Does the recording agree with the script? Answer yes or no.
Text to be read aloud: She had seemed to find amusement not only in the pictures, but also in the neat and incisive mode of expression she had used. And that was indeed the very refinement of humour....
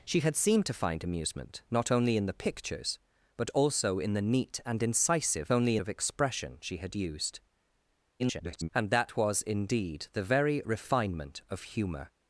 no